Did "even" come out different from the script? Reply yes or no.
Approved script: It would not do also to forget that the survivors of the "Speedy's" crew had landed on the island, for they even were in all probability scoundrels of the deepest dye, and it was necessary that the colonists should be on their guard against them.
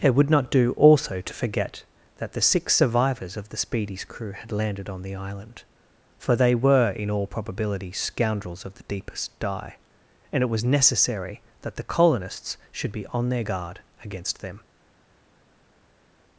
yes